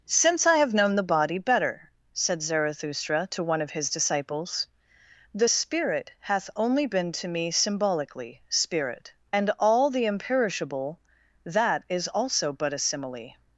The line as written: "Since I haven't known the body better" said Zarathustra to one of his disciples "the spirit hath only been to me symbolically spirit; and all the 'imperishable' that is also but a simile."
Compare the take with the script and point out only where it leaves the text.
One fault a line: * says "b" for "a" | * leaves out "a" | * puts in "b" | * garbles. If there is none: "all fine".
* says "have" for "haven't"